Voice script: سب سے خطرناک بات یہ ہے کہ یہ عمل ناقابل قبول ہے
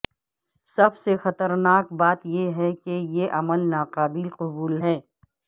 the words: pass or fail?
pass